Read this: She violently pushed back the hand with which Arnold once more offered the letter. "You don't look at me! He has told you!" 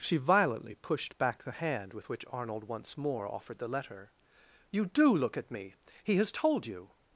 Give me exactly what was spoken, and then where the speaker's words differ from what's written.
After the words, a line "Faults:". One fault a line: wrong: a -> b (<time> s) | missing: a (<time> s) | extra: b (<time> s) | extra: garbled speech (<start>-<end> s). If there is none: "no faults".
She violently pushed back the hand with which Arnold once more offered the letter. "You do look at me! He has told you!"
Faults:
wrong: don't -> do (4.9 s)